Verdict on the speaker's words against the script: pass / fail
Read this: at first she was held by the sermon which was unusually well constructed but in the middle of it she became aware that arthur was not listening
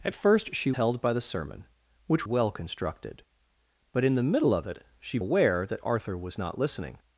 fail